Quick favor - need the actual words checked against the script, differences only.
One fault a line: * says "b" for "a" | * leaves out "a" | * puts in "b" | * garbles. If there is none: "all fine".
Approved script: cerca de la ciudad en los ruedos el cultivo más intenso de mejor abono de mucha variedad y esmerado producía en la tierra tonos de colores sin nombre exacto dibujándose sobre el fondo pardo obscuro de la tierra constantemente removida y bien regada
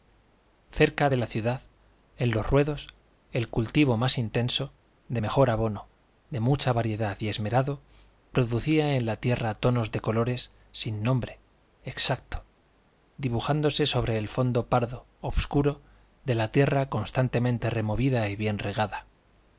all fine